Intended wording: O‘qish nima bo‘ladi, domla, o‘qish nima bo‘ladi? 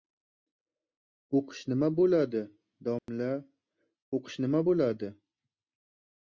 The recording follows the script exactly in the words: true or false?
true